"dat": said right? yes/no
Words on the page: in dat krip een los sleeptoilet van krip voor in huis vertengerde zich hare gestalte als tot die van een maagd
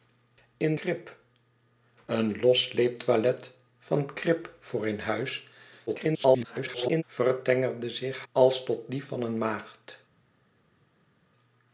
no